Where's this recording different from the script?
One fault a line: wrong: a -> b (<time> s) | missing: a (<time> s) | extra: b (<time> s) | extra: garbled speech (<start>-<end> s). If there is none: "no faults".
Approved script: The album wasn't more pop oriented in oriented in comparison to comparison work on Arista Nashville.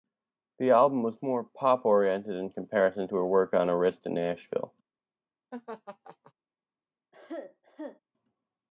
wrong: wasn't -> was (1.0 s)
missing: oriented in (2.5 s)
wrong: comparison -> her (3.2 s)